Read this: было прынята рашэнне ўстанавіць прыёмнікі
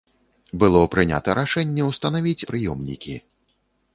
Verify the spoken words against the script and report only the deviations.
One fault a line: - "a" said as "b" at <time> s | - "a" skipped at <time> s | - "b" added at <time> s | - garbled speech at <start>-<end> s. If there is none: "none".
none